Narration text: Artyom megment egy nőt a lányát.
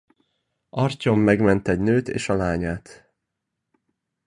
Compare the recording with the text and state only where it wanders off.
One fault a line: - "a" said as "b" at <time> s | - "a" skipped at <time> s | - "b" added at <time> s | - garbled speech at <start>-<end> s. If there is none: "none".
- "és" added at 2.1 s